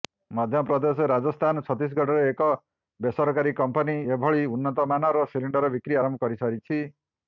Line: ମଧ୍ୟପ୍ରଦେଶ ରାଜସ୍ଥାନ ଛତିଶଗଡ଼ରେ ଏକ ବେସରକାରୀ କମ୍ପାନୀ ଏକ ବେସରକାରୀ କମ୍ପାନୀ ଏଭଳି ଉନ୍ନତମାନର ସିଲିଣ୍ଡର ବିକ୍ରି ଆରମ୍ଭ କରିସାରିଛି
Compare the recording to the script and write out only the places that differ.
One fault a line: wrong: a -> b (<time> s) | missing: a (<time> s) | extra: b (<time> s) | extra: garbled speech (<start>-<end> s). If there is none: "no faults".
missing: ଏକ ବେସରକାରୀ କମ୍ପାନୀ (4.0 s)